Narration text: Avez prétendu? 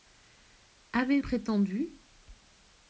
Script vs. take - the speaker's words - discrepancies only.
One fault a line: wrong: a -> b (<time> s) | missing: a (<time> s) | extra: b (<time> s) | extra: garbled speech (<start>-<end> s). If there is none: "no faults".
no faults